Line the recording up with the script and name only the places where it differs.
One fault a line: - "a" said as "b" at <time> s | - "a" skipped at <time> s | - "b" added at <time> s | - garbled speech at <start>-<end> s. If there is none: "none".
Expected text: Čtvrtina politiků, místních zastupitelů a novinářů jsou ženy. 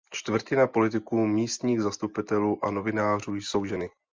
none